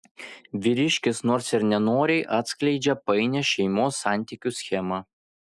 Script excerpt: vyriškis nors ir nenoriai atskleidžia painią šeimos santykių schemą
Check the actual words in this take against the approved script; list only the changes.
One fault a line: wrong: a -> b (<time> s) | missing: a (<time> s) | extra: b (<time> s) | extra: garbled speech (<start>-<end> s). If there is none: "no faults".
no faults